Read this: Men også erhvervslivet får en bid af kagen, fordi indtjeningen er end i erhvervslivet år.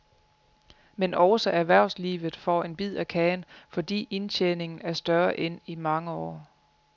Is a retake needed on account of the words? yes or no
yes